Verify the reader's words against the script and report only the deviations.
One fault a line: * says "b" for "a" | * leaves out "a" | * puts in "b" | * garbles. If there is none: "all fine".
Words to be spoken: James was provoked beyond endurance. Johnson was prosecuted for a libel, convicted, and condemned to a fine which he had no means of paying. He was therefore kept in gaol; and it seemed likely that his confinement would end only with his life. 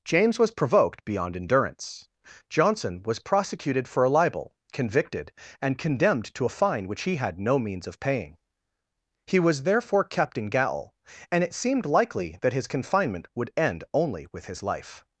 all fine